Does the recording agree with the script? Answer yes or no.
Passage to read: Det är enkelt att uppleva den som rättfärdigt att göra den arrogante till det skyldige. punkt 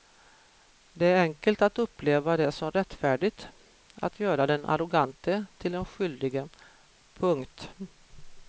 no